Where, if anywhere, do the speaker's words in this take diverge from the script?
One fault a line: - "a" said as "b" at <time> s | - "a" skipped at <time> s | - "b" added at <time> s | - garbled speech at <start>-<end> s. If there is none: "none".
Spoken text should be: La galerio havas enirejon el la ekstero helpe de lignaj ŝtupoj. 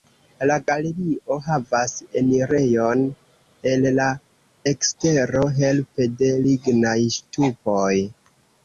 none